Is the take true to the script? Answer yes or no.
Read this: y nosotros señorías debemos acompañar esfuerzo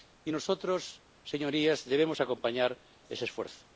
no